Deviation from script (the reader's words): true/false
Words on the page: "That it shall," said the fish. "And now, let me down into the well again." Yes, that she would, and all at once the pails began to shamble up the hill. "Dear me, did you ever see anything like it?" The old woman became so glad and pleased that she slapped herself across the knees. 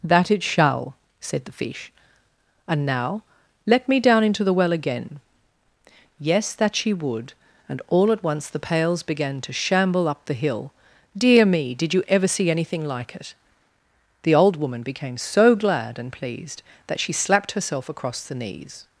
false